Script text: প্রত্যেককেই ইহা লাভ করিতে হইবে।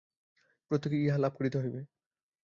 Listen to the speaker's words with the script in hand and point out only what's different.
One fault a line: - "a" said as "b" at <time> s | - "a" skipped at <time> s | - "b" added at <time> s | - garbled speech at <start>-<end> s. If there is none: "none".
none